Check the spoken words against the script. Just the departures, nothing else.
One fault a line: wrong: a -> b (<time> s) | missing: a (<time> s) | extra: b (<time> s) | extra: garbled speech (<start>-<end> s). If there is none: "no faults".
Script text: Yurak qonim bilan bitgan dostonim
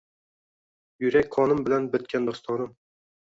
no faults